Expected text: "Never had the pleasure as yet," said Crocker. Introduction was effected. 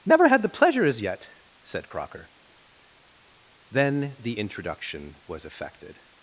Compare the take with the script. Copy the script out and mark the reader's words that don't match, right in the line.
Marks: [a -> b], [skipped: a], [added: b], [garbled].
"Never had the pleasure as yet," said Crocker. [added: Then the] Introduction was effected.